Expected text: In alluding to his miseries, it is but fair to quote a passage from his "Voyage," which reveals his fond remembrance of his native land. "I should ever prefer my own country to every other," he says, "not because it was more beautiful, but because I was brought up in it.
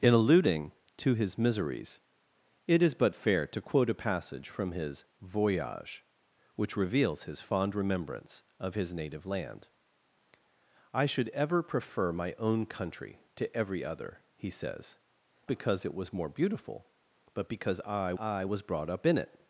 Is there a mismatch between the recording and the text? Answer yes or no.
yes